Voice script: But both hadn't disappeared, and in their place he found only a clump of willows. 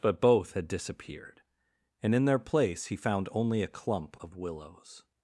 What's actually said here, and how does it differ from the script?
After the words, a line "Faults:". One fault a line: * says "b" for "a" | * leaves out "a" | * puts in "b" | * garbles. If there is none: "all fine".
But both had disappeared, and in their place he found only a clump of willows.
Faults:
* says "had" for "hadn't"